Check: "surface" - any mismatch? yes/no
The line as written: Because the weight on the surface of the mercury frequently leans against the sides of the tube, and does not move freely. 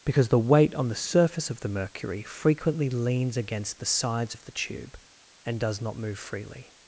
no